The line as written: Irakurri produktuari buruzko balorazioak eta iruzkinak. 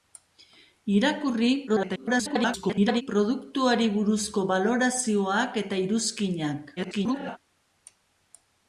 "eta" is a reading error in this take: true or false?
false